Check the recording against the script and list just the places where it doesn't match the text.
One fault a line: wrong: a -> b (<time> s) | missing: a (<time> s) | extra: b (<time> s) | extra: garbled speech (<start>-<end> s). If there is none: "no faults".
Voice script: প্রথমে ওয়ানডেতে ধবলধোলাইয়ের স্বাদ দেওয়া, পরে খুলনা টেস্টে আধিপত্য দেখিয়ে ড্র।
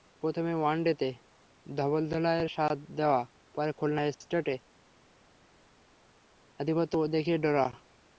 no faults